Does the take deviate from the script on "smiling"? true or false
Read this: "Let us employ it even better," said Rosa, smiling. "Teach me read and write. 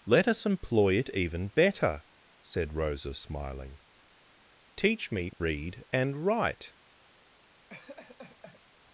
false